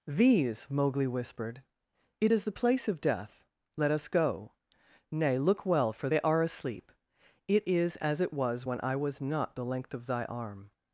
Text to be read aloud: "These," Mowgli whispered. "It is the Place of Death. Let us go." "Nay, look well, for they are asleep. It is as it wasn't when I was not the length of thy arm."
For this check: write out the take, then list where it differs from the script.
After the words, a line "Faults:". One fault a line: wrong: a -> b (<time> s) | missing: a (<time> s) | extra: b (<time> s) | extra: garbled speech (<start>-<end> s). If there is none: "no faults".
"These," Mowgli whispered. "It is the Place of Death. Let us go." "Nay, look well, for they are asleep. It is as it was when I was not the length of thy arm."
Faults:
wrong: wasn't -> was (8.3 s)